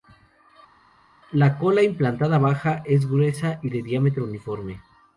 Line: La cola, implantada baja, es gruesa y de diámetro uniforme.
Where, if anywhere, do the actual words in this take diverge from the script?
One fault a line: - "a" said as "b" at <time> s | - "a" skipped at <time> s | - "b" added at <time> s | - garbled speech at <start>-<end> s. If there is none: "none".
none